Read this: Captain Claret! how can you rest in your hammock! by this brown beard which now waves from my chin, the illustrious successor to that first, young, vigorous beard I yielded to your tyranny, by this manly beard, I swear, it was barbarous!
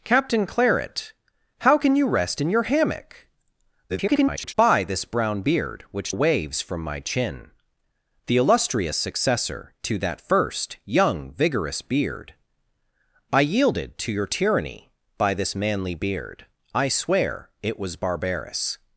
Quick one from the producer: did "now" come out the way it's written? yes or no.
no